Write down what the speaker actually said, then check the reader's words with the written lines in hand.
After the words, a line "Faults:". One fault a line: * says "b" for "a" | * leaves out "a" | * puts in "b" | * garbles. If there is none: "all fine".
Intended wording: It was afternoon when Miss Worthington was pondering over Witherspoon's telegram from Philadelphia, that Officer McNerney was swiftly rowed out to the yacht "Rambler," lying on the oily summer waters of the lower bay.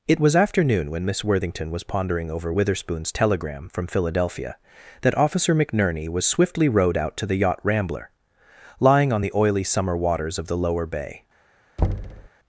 It was afternoon when Miss Worthington was pondering over Witherspoon's telegram from Philadelphia, that Officer McNerney was swiftly rowed out to the yacht "Rambler," lying on the oily summer waters of the lower bay.
Faults:
all fine